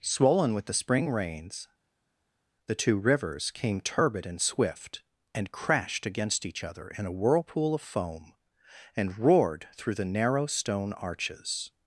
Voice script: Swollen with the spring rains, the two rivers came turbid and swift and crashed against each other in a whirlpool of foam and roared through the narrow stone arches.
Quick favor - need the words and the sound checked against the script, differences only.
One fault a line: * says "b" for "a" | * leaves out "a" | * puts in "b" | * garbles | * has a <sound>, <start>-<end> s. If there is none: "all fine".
all fine